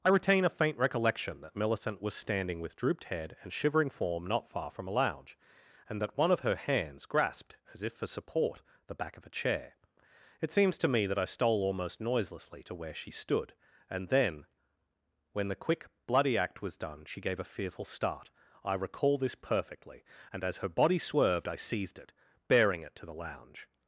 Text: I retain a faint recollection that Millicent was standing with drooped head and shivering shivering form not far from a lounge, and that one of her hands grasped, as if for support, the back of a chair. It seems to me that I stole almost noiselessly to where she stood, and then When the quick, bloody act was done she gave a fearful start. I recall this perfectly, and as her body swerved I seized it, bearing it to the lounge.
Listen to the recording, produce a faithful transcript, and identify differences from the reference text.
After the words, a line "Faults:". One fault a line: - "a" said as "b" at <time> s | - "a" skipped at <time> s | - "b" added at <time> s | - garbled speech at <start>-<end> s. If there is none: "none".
I retain a faint recollection that Millicent was standing with drooped head and shivering form not far from a lounge, and that one of her hands grasped, as if for support, the back of a chair. It seems to me that I stole almost noiselessly to where she stood, and then When the quick, bloody act was done she gave a fearful start. I recall this perfectly, and as her body swerved I seized it, bearing it to the lounge.
Faults:
- "shivering" skipped at 3.9 s